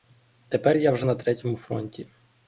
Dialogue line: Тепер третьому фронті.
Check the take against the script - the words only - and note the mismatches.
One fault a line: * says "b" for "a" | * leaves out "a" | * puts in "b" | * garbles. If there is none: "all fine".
* puts in "я вже на"